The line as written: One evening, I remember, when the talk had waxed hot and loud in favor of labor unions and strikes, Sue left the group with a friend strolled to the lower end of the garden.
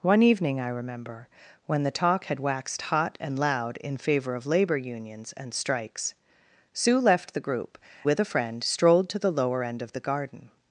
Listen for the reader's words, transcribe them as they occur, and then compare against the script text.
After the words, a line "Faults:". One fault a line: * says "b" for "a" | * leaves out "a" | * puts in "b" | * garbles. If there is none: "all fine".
One evening, I remember, when the talk had waxed hot and loud in favor of labor unions and strikes, Sue left the group with a friend strolled to the lower end of the garden.
Faults:
all fine